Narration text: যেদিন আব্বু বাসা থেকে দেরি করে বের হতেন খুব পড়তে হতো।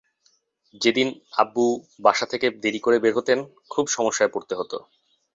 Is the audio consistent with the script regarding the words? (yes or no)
no